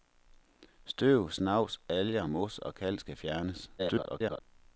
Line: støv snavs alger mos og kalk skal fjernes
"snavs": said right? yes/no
yes